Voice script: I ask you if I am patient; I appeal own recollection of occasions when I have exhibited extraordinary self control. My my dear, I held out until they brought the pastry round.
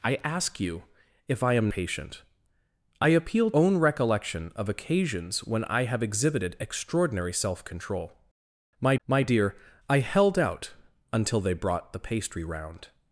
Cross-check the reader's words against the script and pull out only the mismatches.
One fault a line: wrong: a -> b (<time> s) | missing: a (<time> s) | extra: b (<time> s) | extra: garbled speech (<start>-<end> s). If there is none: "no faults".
no faults